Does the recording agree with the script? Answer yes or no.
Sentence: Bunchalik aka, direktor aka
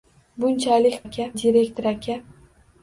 yes